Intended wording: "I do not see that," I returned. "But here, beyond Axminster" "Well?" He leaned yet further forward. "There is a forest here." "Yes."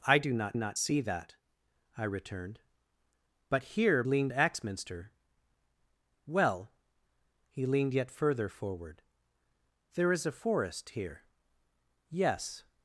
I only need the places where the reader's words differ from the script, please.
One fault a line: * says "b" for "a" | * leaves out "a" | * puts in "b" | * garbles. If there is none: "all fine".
* puts in "not"
* says "leaned" for "beyond"